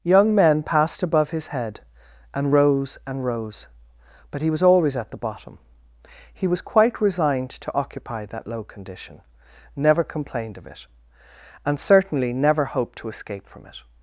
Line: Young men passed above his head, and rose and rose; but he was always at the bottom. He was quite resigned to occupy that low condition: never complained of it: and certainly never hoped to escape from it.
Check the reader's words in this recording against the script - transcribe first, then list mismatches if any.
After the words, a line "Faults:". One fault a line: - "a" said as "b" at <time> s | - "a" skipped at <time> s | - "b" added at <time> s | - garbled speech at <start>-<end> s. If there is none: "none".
Young men passed above his head, and rose and rose; but he was always at the bottom. He was quite resigned to occupy that low condition: never complained of it: and certainly never hoped to escape from it.
Faults:
none